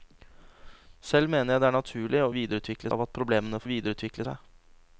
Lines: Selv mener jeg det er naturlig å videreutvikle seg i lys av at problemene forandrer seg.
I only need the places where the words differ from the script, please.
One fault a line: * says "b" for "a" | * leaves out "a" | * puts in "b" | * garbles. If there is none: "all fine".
* leaves out "seg i lys"
* says "videreutvikle" for "forandrer"